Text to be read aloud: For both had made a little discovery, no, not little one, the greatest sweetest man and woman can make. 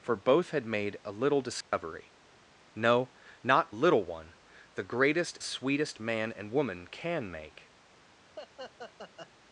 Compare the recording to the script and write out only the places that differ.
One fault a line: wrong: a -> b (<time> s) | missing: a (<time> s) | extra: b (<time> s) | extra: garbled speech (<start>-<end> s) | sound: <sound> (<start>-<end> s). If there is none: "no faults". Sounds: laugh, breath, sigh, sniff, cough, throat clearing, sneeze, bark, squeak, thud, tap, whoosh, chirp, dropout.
sound: dropout (1.6-1.7 s)
sound: laugh (8.4-9.3 s)